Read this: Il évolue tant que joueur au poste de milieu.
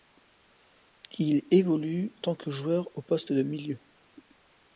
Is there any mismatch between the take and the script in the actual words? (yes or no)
no